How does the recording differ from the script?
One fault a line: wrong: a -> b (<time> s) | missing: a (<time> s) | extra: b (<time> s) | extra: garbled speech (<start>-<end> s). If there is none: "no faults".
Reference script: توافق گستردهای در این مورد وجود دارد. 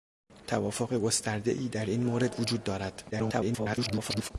extra: garbled speech (3.1-4.3 s)